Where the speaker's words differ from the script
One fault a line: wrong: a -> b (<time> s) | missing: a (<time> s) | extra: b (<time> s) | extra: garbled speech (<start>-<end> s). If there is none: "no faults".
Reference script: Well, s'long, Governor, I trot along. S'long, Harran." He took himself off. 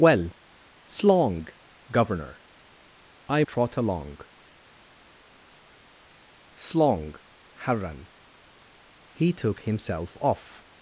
no faults